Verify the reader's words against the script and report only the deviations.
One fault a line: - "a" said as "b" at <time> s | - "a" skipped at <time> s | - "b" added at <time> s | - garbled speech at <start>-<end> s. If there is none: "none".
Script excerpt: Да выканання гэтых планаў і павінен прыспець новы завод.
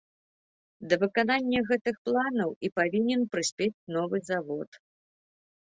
none